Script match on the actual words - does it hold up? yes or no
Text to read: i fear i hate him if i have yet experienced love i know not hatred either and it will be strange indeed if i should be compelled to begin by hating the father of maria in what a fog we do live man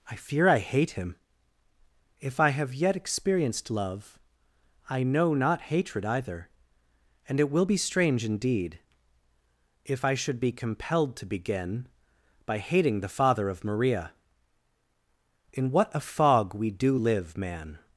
yes